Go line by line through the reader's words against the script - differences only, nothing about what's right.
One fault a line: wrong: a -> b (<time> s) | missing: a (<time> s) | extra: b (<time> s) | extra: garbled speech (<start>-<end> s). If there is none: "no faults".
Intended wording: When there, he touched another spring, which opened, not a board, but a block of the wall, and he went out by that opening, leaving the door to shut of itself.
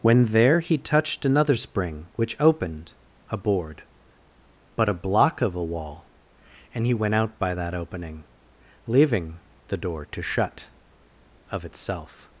missing: not (2.9 s)
wrong: the -> a (5.5 s)